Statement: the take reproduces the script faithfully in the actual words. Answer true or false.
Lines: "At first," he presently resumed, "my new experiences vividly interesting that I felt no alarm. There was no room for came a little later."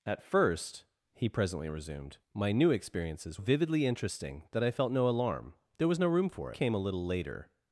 true